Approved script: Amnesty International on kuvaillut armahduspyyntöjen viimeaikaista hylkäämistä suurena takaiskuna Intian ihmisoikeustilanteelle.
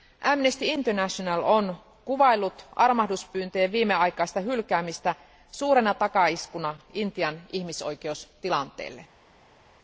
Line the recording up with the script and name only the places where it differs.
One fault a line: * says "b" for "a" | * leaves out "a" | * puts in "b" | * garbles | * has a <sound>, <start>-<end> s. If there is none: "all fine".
all fine